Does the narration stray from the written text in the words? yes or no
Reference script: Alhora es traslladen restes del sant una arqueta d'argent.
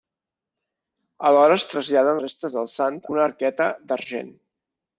no